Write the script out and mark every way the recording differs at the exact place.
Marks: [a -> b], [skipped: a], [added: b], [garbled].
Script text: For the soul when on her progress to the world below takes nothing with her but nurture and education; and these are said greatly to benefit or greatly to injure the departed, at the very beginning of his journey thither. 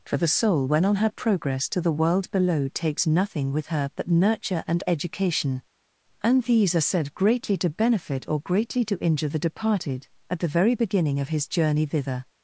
For the soul when on her progress to the world below takes nothing with her but nurture and education; and these are said greatly to benefit or greatly to injure the departed, at the very beginning of his journey thither.